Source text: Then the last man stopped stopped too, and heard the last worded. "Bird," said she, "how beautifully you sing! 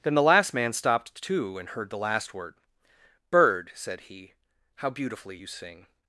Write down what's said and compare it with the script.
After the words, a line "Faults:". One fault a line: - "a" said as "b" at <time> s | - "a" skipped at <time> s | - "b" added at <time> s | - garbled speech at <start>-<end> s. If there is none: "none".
Then the last man stopped too, and heard the last word. "Bird," said he, "how beautifully you sing!
Faults:
- "stopped" skipped at 1.2 s
- "worded" said as "word" at 2.3 s
- "she" said as "he" at 4.0 s